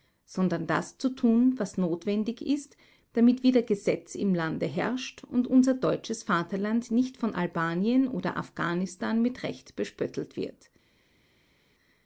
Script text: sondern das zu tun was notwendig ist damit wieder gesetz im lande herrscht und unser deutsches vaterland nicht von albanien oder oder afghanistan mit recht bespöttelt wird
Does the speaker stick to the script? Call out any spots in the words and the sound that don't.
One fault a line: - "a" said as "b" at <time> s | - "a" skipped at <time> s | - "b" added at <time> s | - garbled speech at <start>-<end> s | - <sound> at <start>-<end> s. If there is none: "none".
- "oder" skipped at 8.4 s